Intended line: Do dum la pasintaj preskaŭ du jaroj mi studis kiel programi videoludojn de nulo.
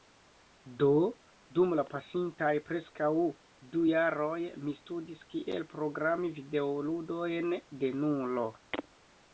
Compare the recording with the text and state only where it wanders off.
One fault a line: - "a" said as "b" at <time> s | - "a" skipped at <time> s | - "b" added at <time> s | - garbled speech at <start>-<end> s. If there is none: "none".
none